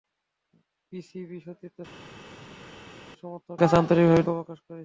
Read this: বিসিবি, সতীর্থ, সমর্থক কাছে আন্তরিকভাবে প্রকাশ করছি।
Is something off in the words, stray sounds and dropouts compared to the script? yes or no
no